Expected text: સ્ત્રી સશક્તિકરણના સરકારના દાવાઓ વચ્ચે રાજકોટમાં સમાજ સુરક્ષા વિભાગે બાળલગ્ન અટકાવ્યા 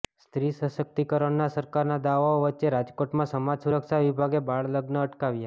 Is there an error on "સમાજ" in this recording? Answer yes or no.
no